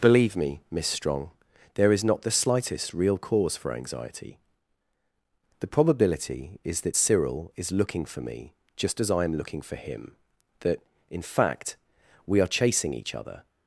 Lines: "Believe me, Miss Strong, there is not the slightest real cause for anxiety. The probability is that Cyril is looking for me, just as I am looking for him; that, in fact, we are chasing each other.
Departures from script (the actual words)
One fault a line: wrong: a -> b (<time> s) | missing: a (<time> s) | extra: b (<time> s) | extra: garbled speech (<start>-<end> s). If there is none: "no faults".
no faults